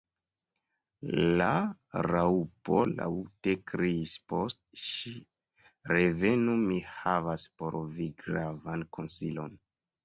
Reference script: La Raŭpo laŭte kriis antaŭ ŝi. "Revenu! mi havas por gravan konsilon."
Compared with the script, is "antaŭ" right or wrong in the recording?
wrong